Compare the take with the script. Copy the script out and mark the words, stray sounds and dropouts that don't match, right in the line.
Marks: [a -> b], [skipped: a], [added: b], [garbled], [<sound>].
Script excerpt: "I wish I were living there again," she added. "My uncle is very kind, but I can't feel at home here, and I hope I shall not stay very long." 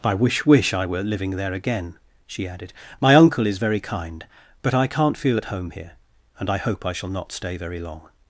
"I wish [added: wish] I were living there again," she added. "My uncle is very kind, but I can't feel at home here, and I hope I shall not stay very long."